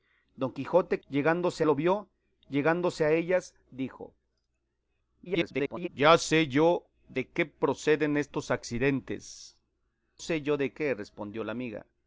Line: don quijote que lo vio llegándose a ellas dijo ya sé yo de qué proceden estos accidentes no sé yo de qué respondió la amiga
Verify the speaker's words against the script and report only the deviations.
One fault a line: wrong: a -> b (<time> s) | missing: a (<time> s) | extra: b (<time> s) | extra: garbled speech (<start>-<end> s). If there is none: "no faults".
wrong: que -> llegándose (1.1 s)
extra: garbled speech (5.3-5.9 s)
missing: no (9.6 s)